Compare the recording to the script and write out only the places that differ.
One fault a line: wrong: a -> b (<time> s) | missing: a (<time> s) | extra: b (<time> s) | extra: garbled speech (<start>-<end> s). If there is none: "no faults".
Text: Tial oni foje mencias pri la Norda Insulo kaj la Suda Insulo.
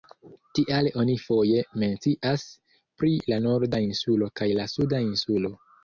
no faults